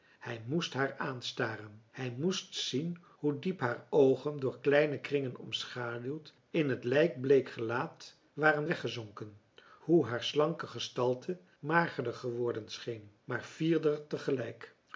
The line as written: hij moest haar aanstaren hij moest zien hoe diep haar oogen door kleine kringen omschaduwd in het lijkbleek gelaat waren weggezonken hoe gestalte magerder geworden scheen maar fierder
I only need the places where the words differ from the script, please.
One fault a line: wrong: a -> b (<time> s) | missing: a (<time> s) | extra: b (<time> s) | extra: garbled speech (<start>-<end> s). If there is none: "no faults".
extra: haar slanke (10.0 s)